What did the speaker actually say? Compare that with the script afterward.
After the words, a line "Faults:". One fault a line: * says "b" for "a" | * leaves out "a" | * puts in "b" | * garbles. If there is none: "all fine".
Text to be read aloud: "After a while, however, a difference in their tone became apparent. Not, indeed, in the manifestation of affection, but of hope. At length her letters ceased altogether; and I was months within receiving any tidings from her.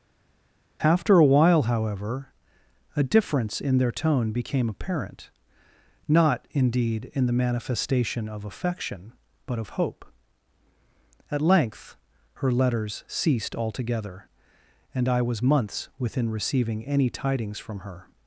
"After a while, however, a difference in their tone became apparent. Not, indeed, in the manifestation of affection, but of hope. At length her letters ceased altogether; and I was months within receiving any tidings from her.
Faults:
all fine